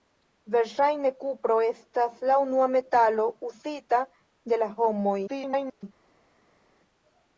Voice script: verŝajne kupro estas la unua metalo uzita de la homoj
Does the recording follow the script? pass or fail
fail